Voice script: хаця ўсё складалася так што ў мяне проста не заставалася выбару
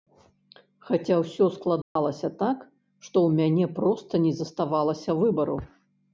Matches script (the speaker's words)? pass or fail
pass